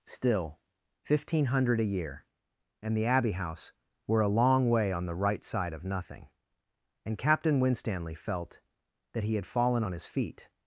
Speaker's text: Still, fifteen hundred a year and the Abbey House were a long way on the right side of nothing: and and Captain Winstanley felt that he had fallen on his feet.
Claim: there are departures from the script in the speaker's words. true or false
true